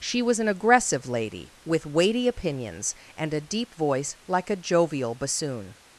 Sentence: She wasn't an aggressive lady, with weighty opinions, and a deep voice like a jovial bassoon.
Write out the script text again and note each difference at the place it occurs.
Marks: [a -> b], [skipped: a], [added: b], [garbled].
She [wasn't -> was] an aggressive lady, with weighty opinions, and a deep voice like a jovial bassoon.